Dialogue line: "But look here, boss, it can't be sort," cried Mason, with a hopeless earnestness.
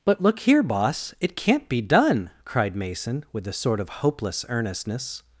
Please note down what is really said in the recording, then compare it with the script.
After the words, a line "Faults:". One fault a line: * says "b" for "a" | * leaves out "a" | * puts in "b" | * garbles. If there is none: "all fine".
"But look here, boss, it can't be done," cried Mason, with a sort of hopeless earnestness.
Faults:
* says "done" for "sort"
* puts in "sort of"